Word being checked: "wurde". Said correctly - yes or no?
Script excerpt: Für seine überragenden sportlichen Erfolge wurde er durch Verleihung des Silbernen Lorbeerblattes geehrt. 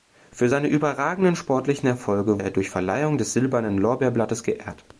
no